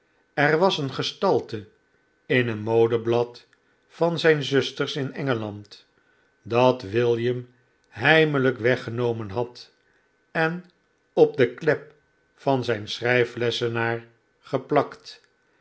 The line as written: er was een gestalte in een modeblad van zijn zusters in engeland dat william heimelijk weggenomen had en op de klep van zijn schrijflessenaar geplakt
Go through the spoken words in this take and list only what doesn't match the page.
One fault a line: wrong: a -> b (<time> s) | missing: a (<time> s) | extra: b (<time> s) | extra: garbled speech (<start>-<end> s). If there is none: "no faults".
no faults